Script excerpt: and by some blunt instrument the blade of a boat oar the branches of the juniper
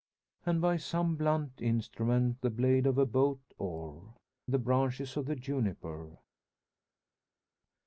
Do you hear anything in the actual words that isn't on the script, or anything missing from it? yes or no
no